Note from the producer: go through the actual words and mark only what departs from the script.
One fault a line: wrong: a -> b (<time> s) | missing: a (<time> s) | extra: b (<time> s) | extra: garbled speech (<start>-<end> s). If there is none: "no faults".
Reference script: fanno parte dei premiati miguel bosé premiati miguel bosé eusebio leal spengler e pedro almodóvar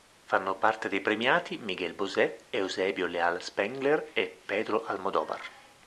missing: premiati miguel bosé (2.5 s)